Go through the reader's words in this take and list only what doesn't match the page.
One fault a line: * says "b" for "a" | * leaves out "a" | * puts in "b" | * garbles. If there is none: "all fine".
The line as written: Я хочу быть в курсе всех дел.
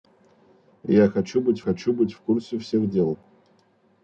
* puts in "хочу быть"